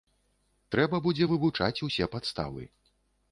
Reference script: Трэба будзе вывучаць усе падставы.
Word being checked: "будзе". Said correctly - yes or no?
yes